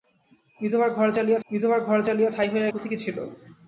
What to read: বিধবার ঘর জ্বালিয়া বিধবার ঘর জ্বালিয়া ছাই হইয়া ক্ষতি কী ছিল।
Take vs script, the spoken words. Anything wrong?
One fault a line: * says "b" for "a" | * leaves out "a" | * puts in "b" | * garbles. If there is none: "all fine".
all fine